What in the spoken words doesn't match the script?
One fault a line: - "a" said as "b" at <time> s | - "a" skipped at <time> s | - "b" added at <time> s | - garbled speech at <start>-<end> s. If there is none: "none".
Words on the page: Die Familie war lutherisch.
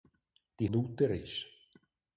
- "Familie war" skipped at 0.7 s